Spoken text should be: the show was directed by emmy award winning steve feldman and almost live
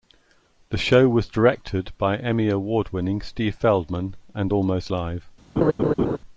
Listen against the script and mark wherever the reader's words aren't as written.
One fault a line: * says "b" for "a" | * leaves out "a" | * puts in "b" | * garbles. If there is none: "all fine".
all fine